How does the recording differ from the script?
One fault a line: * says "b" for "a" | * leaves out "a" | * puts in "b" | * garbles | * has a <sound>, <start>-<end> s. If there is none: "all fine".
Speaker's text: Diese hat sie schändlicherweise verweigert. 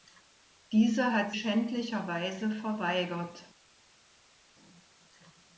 * leaves out "sie"